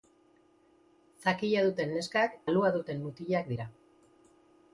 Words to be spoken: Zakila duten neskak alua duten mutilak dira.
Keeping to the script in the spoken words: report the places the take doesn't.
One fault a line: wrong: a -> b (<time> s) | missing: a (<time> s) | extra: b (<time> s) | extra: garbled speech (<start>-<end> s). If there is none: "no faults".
no faults